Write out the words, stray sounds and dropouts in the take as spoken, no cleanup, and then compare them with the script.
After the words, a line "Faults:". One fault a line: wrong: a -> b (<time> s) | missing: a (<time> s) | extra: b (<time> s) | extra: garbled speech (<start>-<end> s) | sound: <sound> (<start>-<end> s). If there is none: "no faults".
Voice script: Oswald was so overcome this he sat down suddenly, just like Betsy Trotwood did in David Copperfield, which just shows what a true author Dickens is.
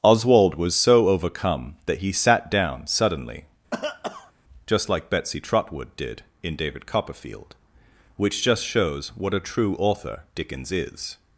Oswald was so overcome that he sat down suddenly, just like Betsy Trotwood did in David Copperfield, which just shows what a true author Dickens is.
Faults:
wrong: this -> that (1.9 s)
sound: cough (3.7-4.3 s)